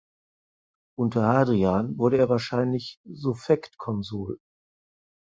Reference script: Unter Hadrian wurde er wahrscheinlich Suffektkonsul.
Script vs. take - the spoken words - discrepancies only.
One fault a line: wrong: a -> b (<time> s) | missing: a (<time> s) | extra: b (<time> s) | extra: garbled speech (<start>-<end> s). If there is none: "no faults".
no faults